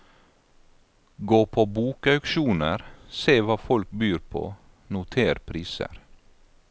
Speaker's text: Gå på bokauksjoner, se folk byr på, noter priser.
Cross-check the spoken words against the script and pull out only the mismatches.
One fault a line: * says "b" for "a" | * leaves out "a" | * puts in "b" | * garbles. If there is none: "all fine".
* puts in "hva"